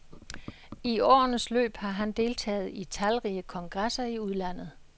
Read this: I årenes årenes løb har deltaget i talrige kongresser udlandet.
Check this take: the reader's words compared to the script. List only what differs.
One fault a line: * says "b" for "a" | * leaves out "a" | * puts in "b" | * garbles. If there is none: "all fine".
* leaves out "årenes"
* puts in "han"
* puts in "i"